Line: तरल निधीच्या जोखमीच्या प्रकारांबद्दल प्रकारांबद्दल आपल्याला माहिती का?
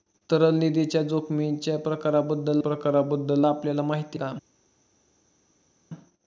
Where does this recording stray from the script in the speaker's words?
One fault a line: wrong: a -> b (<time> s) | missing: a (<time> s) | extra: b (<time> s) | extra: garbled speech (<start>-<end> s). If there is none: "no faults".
no faults